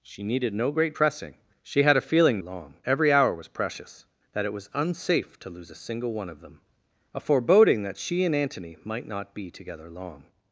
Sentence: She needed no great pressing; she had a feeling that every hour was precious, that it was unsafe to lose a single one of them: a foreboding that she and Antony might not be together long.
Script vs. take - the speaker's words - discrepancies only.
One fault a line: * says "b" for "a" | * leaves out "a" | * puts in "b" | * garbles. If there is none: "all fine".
* says "long" for "that"